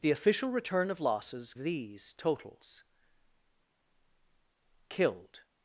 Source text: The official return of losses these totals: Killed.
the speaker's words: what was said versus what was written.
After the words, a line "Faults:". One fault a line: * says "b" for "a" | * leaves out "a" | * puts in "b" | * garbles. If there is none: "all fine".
The official return of losses these totals: Killed.
Faults:
all fine